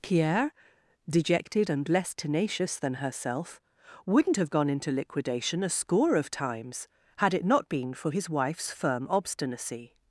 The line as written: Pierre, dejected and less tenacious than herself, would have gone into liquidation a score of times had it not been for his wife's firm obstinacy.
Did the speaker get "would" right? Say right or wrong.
wrong